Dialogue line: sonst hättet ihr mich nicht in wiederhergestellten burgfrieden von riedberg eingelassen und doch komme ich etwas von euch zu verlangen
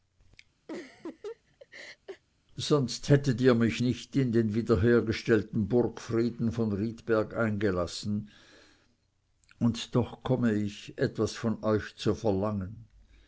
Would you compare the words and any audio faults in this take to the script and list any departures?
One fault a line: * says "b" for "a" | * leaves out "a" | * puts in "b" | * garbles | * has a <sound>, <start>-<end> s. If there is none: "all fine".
* has a laugh, 0.7-2.2 s
* puts in "den"